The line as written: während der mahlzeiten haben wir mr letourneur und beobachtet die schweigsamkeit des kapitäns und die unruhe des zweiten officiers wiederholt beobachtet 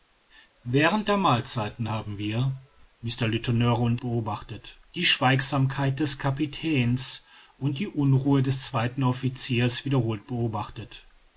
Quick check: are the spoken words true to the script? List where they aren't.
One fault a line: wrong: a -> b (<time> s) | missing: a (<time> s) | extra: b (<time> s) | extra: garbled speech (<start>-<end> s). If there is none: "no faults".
no faults